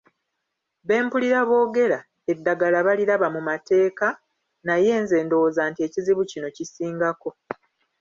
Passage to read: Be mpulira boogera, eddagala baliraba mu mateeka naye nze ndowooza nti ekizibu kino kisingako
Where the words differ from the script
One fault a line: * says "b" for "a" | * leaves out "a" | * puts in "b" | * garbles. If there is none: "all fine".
all fine